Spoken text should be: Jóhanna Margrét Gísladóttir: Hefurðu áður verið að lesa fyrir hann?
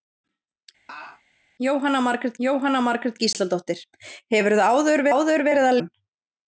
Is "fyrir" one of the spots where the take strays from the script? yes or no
yes